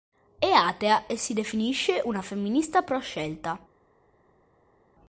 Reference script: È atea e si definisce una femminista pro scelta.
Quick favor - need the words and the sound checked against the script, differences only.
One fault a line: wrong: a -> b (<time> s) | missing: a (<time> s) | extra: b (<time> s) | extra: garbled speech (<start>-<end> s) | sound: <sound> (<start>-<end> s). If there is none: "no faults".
no faults